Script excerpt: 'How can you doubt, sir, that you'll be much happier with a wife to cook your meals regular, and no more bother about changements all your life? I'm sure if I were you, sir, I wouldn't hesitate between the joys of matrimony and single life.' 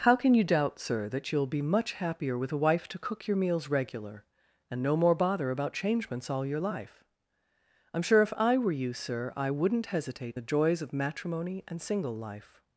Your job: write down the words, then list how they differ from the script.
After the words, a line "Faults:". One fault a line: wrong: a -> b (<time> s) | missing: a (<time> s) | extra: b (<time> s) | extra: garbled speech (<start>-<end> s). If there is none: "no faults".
'How can you doubt, sir, that you'll be much happier with a wife to cook your meals regular, and no more bother about changements all your life? I'm sure if I were you, sir, I wouldn't hesitate the joys of matrimony and single life.'
Faults:
missing: between (10.4 s)